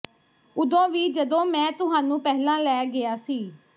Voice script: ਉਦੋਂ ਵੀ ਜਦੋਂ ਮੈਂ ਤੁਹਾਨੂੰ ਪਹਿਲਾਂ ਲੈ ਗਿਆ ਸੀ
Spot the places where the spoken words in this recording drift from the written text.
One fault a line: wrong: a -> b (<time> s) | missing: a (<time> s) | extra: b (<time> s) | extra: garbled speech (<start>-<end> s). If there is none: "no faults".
no faults